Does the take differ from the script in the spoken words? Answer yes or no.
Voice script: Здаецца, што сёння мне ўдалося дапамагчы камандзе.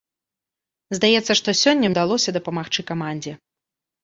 yes